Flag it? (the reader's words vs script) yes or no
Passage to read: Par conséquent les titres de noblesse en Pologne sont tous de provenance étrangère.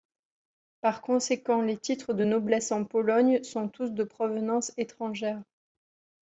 no